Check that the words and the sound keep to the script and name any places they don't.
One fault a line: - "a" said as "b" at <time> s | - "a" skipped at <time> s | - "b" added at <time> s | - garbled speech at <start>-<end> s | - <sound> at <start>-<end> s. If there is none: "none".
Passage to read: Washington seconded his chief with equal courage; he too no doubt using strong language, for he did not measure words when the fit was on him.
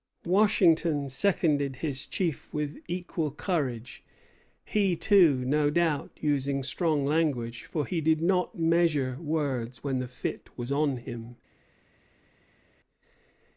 none